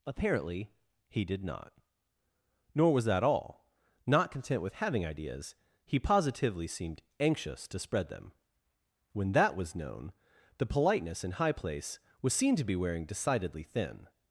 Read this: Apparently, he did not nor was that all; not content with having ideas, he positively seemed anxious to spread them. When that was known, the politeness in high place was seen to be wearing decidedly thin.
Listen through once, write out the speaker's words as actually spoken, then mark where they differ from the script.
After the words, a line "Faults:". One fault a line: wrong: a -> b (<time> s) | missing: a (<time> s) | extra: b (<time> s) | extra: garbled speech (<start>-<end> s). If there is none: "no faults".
Apparently, he did not nor was that all; not content with having ideas, he positively seemed anxious to spread them. When that was known, the politeness in high place was seen to be wearing decidedly thin.
Faults:
no faults